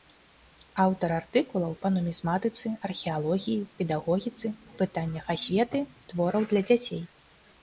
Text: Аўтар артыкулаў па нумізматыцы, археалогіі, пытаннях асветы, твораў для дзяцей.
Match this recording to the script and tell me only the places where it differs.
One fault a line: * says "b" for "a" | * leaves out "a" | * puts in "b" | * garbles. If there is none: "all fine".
* puts in "педагогіцы"